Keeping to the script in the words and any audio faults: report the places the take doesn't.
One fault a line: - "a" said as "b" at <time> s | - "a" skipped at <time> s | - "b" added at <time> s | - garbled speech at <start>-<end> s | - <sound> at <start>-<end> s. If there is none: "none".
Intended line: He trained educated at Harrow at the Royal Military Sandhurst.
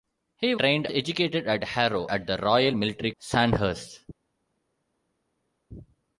none